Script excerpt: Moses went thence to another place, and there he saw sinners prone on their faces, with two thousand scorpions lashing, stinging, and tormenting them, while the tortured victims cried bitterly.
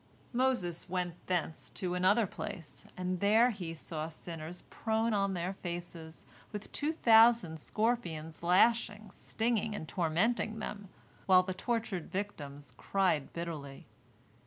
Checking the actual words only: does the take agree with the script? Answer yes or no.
yes